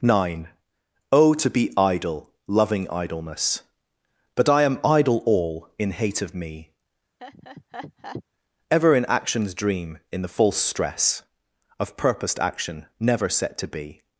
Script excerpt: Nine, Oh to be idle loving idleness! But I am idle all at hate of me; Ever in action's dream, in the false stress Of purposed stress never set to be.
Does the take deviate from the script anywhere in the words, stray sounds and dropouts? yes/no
yes